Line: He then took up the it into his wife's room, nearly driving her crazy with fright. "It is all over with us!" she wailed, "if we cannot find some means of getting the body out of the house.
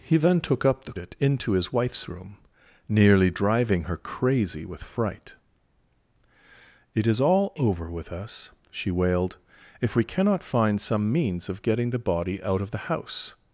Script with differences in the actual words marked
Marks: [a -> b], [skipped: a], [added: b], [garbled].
He then took up the it into his wife's room, nearly driving her crazy with fright. "It is all over with us!" she wailed, "if we cannot find some means of getting the body out of the house.